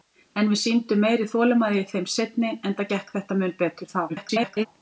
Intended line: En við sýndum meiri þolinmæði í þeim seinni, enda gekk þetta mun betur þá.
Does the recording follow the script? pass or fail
fail